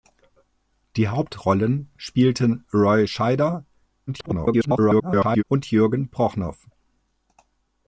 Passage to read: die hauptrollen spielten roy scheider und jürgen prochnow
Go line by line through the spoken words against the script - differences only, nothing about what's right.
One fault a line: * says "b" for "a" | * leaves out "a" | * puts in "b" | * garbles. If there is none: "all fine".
* garbles